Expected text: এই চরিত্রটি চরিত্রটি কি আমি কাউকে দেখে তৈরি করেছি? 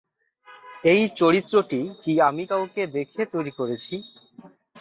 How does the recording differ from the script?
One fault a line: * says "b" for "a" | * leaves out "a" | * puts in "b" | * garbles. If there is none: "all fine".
* leaves out "চরিত্রটি"